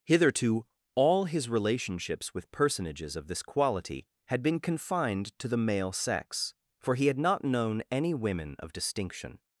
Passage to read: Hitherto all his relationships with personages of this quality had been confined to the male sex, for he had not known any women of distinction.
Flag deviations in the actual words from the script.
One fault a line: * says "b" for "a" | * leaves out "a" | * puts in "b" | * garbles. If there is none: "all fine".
all fine